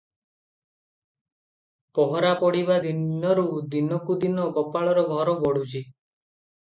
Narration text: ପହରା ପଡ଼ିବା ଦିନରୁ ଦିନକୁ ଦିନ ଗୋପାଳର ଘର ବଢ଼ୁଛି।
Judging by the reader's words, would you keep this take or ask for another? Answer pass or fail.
pass